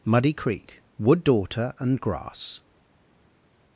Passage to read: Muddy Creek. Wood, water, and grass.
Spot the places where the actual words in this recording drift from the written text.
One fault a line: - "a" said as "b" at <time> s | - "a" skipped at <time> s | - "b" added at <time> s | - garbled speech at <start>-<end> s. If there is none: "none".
- "water" said as "daughter" at 1.2 s